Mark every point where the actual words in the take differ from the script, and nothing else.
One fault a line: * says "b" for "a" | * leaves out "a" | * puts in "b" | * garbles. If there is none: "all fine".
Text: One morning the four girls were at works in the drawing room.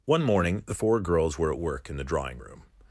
* says "work" for "works"